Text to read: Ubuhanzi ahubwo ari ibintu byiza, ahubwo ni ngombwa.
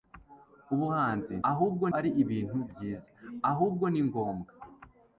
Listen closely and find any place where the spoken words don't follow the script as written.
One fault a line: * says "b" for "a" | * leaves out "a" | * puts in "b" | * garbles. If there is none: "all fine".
all fine